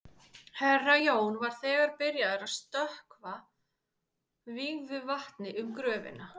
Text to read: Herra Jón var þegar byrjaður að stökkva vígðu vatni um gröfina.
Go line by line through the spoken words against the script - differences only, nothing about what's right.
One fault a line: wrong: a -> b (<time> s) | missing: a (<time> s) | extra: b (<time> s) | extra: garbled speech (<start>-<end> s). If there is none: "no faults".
no faults